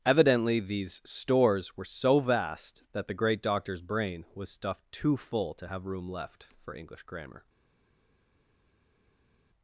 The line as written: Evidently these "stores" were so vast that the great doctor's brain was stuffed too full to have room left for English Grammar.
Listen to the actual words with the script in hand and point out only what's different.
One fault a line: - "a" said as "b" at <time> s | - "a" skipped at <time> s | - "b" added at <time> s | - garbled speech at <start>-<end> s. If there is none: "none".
none